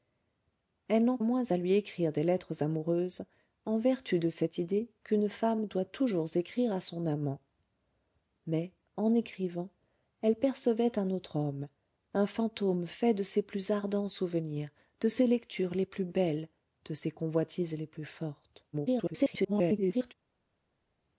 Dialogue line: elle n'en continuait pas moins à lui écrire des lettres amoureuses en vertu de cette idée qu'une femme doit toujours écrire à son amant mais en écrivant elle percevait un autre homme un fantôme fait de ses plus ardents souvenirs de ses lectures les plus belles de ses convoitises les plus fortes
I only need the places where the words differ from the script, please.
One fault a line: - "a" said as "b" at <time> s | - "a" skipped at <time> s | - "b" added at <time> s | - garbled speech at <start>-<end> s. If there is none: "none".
- "continuait pas" skipped at 1.2 s
- garbled speech at 18.7-20.1 s